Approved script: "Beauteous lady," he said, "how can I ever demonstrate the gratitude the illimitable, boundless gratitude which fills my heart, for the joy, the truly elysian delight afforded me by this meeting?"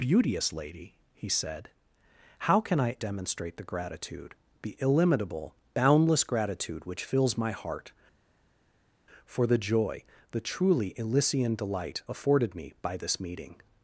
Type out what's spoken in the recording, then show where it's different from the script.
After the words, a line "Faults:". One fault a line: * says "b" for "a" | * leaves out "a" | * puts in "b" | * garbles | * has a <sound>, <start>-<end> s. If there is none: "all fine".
"Beauteous lady," he said, "how can I demonstrate the gratitude the illimitable, boundless gratitude which fills my heart, for the joy, the truly elysian delight afforded me by this meeting?"
Faults:
* leaves out "ever"